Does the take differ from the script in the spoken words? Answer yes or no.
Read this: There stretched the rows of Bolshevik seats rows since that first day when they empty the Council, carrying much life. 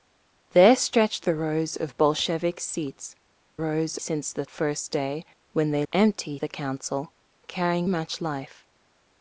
no